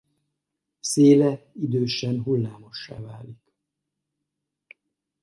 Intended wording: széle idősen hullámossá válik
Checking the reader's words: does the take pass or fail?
pass